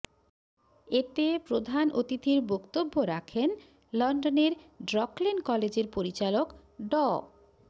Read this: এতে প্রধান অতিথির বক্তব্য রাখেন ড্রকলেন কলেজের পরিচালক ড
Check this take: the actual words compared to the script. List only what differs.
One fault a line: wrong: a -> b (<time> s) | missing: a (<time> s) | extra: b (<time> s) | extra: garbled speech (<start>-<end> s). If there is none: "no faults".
extra: লন্ডনের (3.9 s)